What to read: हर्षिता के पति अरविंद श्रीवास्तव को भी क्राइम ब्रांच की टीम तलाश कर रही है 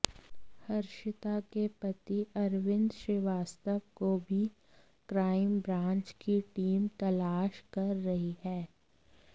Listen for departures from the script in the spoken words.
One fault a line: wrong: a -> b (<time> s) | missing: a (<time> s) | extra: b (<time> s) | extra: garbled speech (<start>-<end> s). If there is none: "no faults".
no faults